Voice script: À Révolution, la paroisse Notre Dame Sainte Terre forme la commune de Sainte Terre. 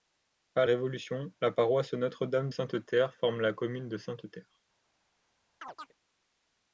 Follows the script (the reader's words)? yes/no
yes